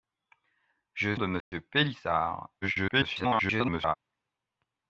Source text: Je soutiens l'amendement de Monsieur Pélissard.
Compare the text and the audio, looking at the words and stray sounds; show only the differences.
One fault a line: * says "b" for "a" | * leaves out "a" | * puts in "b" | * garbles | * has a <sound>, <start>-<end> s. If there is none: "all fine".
* leaves out "soutiens l'amendement"
* has a dropout, 1.4-1.5 s
* garbles